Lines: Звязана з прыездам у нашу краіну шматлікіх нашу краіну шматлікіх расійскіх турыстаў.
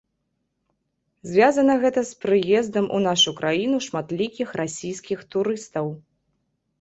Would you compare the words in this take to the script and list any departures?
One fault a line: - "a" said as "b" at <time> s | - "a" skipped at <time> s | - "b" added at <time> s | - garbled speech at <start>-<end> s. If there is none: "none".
- "гэта" added at 1.8 s
- "нашу краіну шматлікіх" skipped at 4.5 s